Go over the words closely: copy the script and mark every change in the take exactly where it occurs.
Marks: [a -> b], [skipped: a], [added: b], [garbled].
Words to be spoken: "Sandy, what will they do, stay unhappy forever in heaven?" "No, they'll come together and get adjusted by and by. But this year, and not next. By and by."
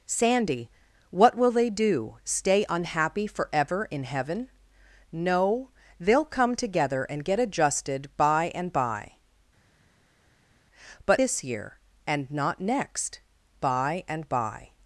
"Sandy, what will they do, stay unhappy forever in heaven?" "No, they'll come together and get adjusted by and by. But this year, and not next. By and by."